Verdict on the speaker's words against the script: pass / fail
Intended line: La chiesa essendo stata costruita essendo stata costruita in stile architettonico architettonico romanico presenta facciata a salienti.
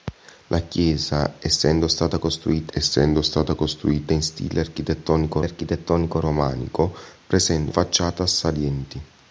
pass